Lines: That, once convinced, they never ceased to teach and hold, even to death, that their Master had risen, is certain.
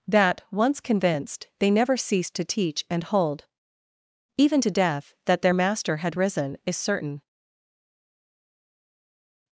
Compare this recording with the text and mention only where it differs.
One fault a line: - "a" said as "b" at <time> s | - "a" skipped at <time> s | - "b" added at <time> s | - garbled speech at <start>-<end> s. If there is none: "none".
none